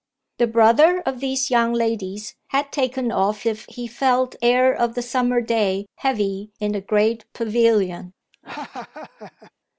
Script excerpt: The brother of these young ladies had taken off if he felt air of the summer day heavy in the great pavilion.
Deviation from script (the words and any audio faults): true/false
true